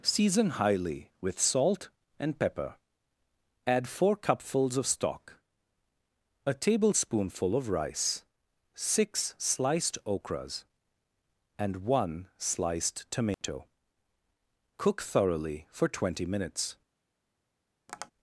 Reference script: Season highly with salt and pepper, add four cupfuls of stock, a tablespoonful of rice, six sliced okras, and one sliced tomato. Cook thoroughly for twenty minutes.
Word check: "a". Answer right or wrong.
right